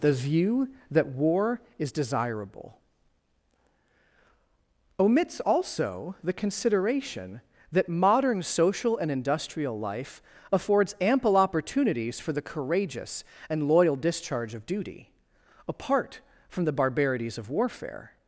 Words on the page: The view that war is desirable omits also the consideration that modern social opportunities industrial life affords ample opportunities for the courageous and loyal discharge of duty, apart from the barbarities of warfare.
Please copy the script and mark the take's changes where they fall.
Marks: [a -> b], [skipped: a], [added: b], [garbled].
The view that war is desirable omits also the consideration that modern social [opportunities -> and] industrial life affords ample opportunities for the courageous and loyal discharge of duty, apart from the barbarities of warfare.